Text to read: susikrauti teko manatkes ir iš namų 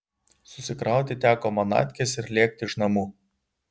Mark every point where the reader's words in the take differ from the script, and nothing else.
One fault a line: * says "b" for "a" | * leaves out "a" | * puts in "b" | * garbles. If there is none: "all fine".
* puts in "lėkti"